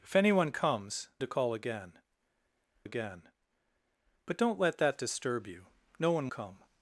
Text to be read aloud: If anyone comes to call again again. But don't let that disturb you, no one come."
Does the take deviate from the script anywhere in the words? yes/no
no